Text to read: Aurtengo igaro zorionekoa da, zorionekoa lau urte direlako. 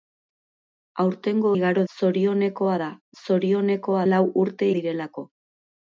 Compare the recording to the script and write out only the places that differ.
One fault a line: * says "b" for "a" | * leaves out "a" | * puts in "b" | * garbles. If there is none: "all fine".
all fine